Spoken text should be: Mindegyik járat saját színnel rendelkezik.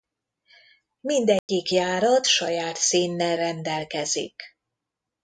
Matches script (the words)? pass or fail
pass